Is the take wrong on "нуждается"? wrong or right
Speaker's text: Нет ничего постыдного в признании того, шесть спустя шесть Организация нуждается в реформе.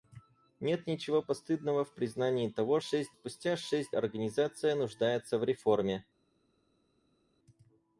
right